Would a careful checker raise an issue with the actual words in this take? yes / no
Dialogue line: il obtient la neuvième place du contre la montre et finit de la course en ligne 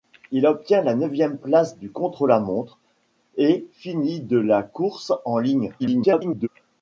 yes